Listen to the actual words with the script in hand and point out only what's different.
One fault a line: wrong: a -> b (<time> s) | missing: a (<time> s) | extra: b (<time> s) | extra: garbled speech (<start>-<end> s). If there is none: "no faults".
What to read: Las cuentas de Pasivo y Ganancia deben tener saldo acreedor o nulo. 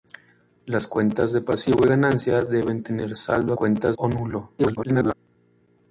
wrong: acreedor -> cuentas (3.5 s)
extra: garbled speech (4.6-5.1 s)